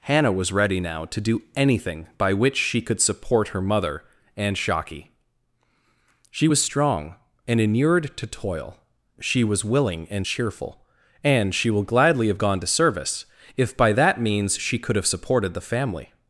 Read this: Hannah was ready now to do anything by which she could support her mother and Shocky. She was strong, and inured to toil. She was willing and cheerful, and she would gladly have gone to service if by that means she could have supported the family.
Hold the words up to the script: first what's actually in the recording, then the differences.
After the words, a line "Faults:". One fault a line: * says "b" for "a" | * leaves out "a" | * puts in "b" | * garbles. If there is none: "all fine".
Hannah was ready now to do anything by which she could support her mother and Shocky. She was strong, and inured to toil. She was willing and cheerful, and she will gladly have gone to service if by that means she could have supported the family.
Faults:
* says "will" for "would"